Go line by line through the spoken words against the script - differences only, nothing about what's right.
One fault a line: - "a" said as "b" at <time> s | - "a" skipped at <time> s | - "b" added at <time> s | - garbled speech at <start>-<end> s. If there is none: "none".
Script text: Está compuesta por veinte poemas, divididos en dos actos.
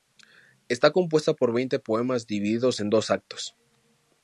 none